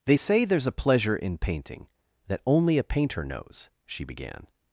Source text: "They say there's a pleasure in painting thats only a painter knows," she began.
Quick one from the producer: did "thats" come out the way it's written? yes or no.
no